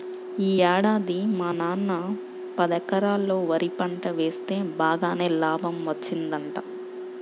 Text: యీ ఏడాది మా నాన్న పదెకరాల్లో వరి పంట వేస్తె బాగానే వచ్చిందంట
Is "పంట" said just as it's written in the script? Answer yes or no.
yes